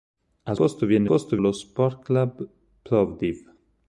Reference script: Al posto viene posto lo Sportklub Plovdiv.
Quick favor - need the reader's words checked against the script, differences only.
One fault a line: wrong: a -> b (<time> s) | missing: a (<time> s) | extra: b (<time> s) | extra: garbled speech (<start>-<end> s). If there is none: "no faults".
no faults